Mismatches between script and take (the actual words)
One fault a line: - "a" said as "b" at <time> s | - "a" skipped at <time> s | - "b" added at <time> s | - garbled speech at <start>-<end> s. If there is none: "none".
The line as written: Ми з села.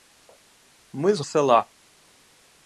none